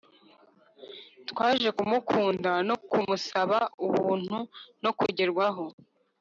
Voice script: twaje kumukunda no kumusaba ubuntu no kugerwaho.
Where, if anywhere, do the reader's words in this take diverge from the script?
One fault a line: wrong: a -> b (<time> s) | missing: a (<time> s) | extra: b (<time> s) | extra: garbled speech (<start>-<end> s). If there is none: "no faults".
no faults